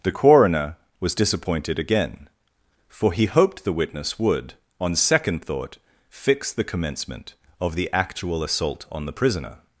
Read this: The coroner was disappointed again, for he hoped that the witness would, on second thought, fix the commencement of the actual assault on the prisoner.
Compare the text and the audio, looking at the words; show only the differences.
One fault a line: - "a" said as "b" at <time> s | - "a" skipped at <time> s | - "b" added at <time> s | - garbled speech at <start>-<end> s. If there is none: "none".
- "that" skipped at 3.6 s